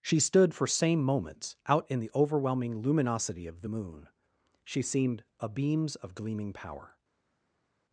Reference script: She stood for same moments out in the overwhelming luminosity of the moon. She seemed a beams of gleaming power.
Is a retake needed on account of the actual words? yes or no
no